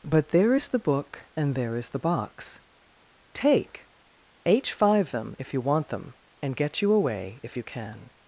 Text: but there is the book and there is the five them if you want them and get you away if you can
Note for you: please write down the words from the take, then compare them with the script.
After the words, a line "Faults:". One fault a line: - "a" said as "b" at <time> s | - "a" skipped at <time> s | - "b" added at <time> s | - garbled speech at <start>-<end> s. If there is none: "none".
but there is the book and there is the box take h five them if you want them and get you away if you can
Faults:
- "box take h" added at 2.0 s